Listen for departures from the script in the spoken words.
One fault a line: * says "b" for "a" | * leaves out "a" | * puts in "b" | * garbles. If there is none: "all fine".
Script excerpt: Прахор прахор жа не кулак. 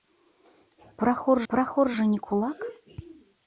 all fine